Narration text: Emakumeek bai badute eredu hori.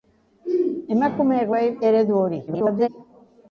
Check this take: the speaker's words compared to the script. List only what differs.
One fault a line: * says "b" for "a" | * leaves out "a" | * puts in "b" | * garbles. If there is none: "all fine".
* leaves out "badute"
* garbles